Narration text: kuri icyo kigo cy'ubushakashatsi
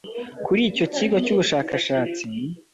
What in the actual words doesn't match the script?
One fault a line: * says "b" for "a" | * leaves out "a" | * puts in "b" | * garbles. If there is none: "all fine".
all fine